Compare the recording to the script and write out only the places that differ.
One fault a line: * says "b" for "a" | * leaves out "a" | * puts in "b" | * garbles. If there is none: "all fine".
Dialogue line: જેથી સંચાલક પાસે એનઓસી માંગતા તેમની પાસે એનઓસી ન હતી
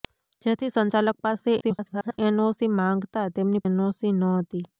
* garbles
* leaves out "પાસે"